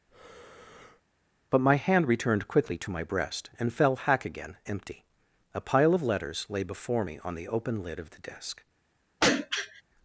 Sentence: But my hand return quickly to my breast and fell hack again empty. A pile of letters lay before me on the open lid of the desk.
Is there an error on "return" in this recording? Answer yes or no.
yes